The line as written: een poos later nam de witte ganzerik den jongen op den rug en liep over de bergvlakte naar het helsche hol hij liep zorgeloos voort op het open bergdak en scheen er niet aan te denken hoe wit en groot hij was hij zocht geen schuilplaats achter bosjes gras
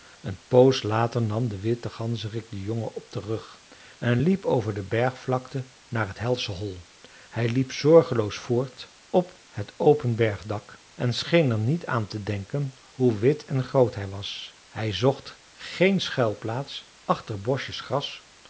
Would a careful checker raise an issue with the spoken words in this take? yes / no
no